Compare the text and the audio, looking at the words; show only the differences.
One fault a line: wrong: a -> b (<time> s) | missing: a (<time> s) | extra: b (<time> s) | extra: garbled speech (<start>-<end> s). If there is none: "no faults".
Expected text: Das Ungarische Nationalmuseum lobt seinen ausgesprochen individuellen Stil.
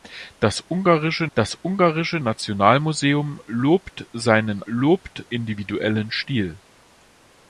extra: das Ungarische (1.3 s)
wrong: ausgesprochen -> lobt (4.7 s)